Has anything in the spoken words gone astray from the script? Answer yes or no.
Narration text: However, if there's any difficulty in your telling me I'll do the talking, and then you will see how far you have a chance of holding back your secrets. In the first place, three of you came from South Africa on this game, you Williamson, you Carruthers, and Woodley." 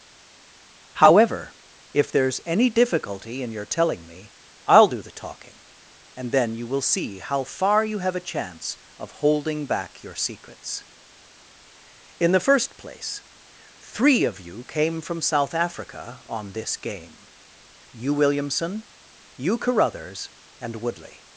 no